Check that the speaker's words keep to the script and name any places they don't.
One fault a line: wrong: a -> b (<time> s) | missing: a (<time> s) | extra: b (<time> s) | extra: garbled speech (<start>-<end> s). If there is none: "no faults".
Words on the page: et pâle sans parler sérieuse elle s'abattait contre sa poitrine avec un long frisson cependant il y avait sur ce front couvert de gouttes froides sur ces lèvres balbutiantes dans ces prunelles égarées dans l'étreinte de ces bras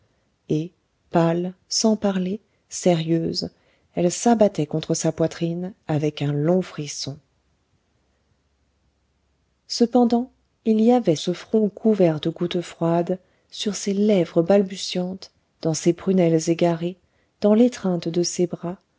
missing: sur (11.2 s)